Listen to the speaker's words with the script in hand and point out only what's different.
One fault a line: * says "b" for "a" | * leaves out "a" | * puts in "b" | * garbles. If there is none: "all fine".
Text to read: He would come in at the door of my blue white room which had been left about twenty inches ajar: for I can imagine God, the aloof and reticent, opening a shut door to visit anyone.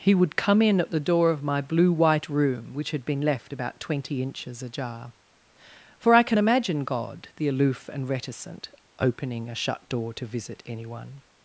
all fine